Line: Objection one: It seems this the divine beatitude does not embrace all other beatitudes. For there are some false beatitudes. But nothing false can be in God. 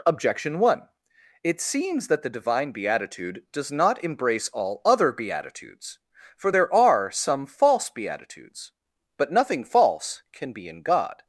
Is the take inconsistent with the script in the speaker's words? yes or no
yes